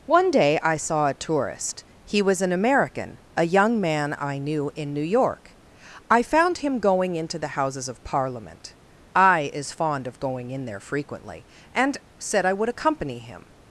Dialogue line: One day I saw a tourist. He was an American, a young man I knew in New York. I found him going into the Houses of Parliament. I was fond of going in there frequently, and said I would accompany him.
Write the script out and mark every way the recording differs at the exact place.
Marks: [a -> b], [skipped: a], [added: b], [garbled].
One day I saw a tourist. He was an American, a young man I knew in New York. I found him going into the Houses of Parliament. I [was -> is] fond of going in there frequently, and said I would accompany him.